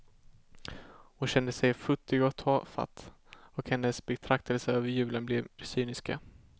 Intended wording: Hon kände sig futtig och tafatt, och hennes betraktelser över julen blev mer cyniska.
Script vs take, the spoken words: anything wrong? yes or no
yes